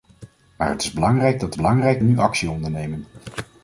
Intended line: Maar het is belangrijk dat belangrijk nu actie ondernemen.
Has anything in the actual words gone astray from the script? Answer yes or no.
no